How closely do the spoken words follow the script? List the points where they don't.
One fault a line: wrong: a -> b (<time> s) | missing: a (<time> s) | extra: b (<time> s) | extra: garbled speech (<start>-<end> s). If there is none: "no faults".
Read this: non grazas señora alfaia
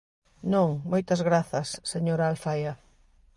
extra: moitas (0.9 s)